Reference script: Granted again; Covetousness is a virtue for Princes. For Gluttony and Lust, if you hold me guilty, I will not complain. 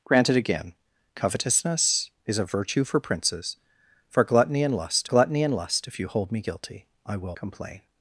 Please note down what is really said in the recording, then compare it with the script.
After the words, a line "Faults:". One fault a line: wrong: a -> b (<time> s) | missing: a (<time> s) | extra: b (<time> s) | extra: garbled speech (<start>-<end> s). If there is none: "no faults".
Granted again; Covetousness is a virtue for Princes. For Gluttony and Lust Gluttony and Lust, if you hold me guilty, I will complain.
Faults:
extra: Gluttony and Lust (5.0 s)
missing: not (7.4 s)